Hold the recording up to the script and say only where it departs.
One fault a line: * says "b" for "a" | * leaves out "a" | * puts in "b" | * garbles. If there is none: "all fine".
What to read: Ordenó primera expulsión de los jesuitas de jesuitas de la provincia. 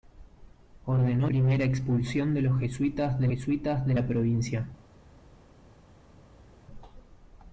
all fine